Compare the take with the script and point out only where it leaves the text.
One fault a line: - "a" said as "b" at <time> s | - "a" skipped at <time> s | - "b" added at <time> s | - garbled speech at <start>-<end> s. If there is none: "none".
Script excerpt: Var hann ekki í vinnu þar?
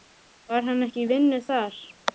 none